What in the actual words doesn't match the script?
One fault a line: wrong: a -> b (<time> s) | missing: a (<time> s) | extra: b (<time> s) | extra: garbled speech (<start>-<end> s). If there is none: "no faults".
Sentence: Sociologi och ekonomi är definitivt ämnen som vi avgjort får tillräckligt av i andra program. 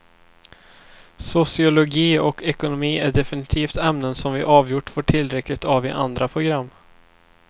no faults